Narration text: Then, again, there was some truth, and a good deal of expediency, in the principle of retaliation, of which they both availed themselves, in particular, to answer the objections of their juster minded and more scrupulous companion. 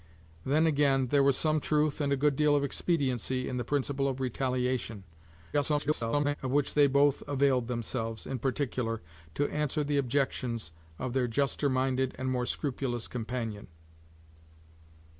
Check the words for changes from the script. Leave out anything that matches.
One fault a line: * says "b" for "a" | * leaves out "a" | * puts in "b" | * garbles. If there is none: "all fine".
* garbles